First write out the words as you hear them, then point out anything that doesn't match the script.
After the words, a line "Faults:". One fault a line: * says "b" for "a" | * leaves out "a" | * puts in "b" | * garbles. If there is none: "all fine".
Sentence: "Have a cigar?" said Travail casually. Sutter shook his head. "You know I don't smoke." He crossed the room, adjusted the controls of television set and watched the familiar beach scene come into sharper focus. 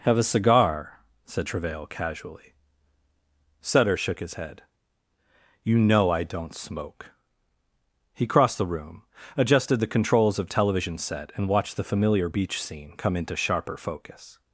"Have a cigar?" said Travail casually. Sutter shook his head. "You know I don't smoke." He crossed the room, adjusted the controls of television set and watched the familiar beach scene come into sharper focus.
Faults:
all fine